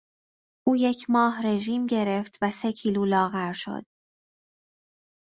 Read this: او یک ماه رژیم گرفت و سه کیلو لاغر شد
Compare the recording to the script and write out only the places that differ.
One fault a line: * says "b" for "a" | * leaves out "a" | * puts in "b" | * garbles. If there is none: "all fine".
all fine